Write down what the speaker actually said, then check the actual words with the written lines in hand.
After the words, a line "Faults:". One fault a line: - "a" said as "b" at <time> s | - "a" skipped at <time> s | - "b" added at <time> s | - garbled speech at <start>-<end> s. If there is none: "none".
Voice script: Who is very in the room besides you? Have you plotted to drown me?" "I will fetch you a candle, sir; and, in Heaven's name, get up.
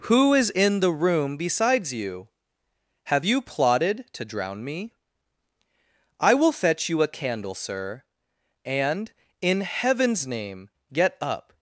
Who is in the room besides you? Have you plotted to drown me?" "I will fetch you a candle, sir; and, in Heaven's name, get up.
Faults:
- "very" skipped at 0.5 s